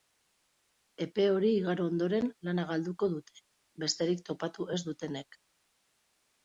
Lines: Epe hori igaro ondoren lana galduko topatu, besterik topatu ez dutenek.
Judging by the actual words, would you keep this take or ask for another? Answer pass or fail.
fail